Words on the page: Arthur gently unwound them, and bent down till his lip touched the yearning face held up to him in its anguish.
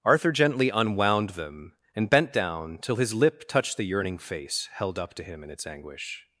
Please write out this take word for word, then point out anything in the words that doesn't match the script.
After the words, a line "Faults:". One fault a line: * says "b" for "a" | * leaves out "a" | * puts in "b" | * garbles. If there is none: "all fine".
Arthur gently unwound them, and bent down till his lip touched the yearning face held up to him in its anguish.
Faults:
all fine